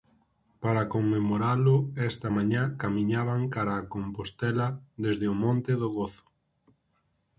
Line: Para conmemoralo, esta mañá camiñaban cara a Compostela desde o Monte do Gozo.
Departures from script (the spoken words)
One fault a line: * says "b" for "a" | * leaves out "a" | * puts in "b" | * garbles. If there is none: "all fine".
all fine